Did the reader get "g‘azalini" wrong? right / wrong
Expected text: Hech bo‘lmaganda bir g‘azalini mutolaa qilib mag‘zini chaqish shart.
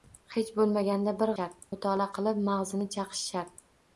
wrong